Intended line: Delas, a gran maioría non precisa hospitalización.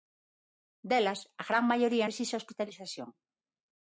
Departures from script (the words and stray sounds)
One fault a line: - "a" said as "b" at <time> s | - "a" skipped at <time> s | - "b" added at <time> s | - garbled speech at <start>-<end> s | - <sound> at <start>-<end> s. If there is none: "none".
- "non" skipped at 2.1 s